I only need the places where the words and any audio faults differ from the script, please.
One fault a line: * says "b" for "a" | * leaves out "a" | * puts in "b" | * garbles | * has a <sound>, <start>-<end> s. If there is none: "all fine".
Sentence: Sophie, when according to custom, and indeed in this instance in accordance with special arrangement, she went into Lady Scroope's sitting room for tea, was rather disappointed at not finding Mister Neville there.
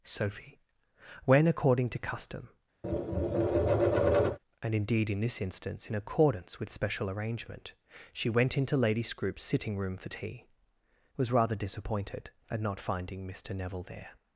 * has a tap, 2.8-4.4 s